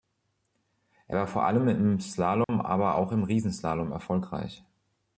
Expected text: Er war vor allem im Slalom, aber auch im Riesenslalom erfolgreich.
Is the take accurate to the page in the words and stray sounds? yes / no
no